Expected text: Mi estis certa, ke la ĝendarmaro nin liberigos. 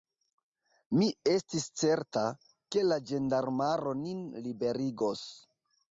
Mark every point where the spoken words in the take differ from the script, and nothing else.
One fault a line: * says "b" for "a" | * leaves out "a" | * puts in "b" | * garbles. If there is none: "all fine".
all fine